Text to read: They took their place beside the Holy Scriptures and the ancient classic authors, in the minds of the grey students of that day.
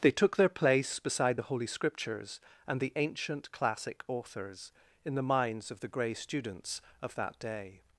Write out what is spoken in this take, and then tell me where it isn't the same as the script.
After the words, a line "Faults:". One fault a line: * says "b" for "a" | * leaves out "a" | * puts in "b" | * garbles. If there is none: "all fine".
They took their place beside the Holy Scriptures and the ancient classic authors, in the minds of the grey students of that day.
Faults:
all fine